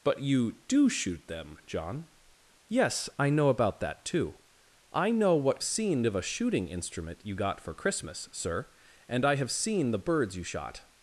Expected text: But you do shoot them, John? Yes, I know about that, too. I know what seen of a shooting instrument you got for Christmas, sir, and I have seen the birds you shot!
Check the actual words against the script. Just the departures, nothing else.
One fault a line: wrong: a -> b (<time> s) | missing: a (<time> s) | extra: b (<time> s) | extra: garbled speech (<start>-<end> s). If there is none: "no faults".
no faults